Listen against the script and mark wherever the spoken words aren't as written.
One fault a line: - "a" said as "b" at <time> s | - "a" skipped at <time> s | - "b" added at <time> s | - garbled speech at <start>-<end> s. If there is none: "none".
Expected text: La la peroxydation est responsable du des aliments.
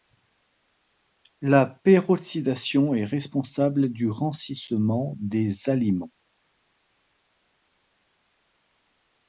- "la" skipped at 1.7 s
- "rancissement" added at 4.1 s